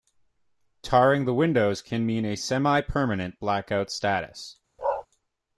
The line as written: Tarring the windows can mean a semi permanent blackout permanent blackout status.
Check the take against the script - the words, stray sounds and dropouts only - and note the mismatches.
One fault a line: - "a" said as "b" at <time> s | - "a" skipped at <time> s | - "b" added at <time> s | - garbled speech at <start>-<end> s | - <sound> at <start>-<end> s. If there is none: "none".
- "permanent blackout" skipped at 3.9 s
- bark at 4.8-5.1 s